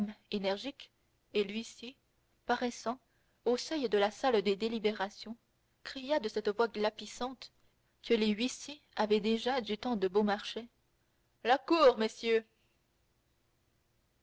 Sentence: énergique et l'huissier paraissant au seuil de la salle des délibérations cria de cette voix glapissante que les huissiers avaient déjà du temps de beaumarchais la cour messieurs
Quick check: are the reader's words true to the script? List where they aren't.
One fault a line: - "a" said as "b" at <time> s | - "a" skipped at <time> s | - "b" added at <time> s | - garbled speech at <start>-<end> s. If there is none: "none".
none